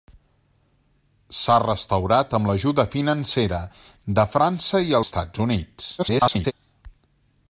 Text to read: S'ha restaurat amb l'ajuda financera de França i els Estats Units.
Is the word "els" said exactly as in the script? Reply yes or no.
no